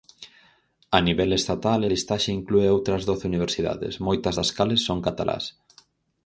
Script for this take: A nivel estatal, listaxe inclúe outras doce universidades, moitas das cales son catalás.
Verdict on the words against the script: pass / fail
pass